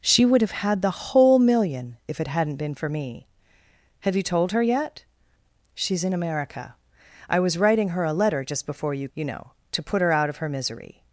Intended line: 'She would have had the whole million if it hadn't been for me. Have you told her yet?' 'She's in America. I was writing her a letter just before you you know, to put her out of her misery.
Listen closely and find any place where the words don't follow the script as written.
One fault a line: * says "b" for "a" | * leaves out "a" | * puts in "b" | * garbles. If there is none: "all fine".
all fine